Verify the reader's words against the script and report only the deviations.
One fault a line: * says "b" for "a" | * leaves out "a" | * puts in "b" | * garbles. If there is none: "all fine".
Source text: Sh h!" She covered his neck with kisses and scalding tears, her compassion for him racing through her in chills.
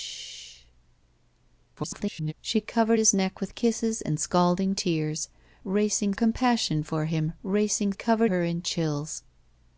* garbles
* says "racing" for "her"
* says "covered" for "through"